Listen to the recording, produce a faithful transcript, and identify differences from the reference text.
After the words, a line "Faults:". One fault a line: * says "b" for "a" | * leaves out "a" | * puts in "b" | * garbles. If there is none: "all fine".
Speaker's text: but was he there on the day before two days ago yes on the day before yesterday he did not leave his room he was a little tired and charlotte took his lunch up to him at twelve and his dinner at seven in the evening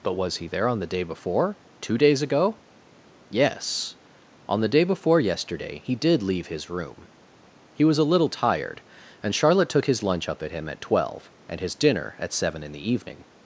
but was he there on the day before two days ago yes on the day before yesterday he did leave his room he was a little tired and charlotte took his lunch up at him at twelve and his dinner at seven in the evening
Faults:
* leaves out "not"
* says "at" for "to"